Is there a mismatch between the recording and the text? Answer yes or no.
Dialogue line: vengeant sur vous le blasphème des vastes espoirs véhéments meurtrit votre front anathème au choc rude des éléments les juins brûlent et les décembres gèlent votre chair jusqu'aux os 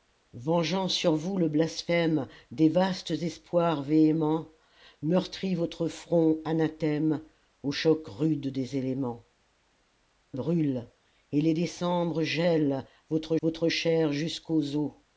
yes